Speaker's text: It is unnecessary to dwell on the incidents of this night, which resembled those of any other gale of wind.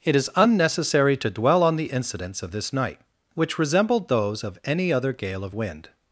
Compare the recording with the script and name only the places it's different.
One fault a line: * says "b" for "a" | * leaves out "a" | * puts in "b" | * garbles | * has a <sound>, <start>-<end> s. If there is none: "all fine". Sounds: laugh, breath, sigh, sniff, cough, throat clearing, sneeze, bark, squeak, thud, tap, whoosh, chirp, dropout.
all fine